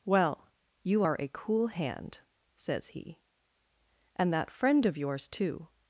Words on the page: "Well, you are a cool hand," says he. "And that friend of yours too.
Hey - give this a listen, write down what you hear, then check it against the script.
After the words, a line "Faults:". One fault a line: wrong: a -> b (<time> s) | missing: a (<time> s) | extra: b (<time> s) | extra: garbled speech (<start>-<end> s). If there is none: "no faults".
"Well, you are a cool hand," says he. "And that friend of yours too.
Faults:
no faults